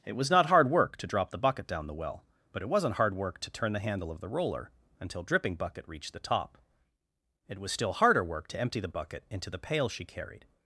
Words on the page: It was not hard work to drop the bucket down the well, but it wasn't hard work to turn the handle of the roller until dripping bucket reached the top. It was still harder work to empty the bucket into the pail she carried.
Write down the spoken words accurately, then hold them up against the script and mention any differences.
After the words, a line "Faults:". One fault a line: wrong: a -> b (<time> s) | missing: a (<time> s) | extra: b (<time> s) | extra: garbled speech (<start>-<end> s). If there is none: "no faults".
It was not hard work to drop the bucket down the well, but it wasn't hard work to turn the handle of the roller until dripping bucket reached the top. It was still harder work to empty the bucket into the pail she carried.
Faults:
no faults